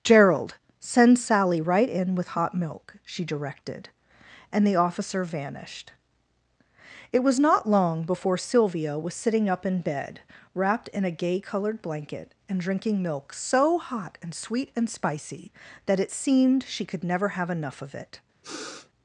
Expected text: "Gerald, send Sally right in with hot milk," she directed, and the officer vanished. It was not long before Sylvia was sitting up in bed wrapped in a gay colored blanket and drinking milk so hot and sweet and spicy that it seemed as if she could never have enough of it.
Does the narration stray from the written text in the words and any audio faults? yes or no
yes